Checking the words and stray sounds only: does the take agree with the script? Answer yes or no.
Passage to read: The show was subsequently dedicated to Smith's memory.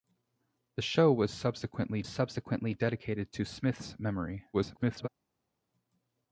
no